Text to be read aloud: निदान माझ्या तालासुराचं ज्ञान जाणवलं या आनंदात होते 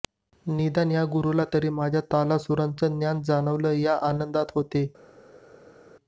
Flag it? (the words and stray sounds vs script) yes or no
yes